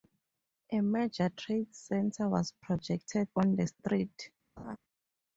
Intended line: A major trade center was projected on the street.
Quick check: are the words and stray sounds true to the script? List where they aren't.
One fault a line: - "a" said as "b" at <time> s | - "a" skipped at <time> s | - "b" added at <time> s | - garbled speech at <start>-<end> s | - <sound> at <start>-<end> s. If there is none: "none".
- laugh at 4.6-4.8 s